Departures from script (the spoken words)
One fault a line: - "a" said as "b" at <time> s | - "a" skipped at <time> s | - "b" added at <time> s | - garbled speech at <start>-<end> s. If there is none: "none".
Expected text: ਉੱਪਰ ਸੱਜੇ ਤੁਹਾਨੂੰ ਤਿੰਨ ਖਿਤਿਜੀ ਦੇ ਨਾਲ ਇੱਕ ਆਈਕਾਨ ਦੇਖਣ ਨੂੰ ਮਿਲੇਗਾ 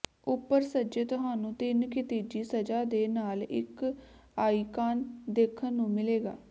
- "ਸਜ਼ਾ" added at 2.4 s